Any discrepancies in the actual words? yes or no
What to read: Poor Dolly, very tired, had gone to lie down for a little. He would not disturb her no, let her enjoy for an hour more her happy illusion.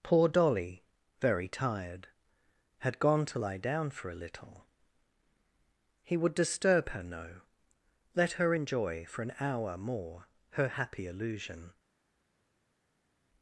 yes